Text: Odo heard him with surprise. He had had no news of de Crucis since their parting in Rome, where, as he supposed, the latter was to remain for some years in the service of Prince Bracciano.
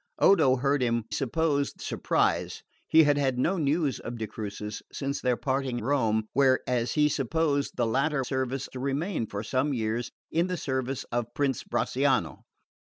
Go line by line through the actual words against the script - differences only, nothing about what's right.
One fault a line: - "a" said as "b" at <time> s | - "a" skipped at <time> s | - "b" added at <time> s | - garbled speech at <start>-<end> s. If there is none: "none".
- "with" said as "supposed" at 1.1 s
- "in" skipped at 5.8 s
- "was" said as "service" at 8.2 s